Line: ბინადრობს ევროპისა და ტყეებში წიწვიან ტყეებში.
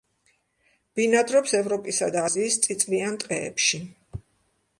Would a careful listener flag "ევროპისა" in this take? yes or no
no